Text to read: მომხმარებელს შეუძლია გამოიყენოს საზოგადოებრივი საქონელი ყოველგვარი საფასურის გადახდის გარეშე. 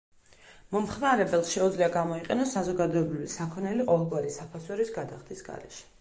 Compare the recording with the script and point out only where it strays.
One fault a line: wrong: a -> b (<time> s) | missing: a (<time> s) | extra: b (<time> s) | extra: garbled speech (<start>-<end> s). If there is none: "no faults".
no faults